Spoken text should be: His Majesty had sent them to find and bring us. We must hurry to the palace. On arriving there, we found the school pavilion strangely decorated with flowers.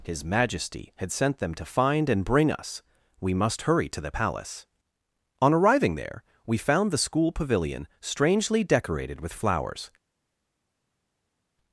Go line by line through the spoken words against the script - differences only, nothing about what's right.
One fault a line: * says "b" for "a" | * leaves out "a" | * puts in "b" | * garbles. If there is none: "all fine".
all fine